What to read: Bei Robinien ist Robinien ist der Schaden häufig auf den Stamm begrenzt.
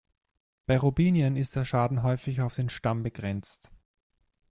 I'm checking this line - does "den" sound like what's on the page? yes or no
yes